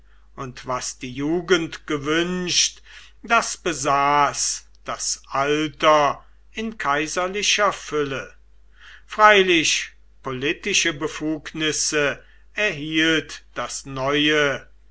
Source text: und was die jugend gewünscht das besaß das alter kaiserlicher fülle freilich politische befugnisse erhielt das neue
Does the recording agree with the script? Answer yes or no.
no